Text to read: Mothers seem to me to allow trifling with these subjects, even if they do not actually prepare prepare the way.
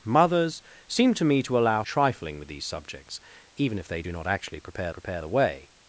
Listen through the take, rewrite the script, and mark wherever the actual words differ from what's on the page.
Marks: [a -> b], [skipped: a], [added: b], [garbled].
Mothers seem to me to allow trifling with these subjects, even if they do not actually prepare prepare the way.